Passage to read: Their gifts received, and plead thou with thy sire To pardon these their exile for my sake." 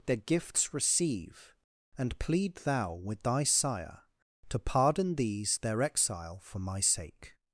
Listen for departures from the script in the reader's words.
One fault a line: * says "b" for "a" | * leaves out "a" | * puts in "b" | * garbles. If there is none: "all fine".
* says "receive" for "received"